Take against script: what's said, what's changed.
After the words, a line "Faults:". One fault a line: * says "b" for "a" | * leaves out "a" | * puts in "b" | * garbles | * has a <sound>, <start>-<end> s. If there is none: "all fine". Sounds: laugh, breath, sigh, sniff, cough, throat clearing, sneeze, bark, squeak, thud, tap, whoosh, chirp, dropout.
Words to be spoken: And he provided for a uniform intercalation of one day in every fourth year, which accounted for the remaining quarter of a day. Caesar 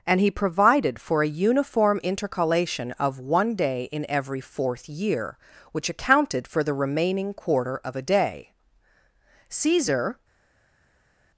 And he provided for a uniform intercalation of one day in every fourth year, which accounted for the remaining quarter of a day. Caesar
Faults:
all fine